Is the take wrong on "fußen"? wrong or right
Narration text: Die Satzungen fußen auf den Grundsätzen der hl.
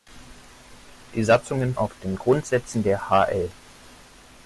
wrong